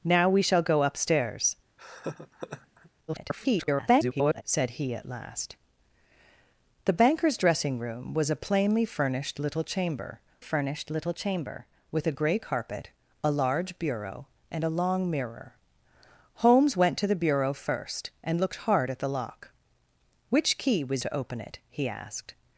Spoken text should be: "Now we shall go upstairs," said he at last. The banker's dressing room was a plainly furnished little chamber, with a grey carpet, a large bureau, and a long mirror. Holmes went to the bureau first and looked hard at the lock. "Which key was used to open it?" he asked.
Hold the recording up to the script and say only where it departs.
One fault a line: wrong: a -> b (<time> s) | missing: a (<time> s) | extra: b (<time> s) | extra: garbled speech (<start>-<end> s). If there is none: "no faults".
extra: garbled speech (3.1-4.4 s)
extra: furnished little chamber (10.4 s)
missing: used (21.0 s)